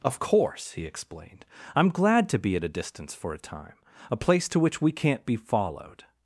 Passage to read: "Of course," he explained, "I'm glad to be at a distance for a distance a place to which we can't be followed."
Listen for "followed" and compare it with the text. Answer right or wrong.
right